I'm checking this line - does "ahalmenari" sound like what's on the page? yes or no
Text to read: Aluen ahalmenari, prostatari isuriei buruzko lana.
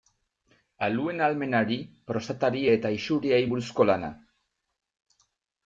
yes